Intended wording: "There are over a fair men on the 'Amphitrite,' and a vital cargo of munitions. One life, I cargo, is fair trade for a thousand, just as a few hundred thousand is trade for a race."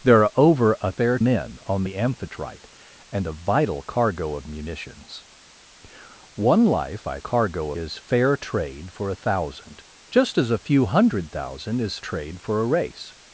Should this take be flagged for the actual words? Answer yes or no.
no